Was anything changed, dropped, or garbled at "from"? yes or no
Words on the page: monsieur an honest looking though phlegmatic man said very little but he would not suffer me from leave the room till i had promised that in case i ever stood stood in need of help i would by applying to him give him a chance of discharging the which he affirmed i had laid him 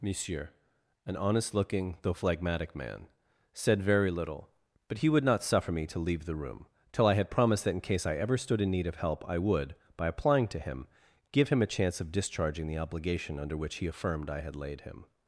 yes